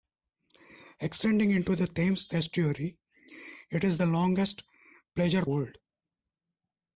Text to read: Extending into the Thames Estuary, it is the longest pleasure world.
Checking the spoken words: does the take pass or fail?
pass